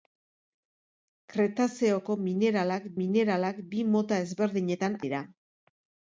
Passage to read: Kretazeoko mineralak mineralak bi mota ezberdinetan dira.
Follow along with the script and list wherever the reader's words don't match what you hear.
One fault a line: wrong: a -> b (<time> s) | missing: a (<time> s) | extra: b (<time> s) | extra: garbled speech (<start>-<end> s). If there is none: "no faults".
no faults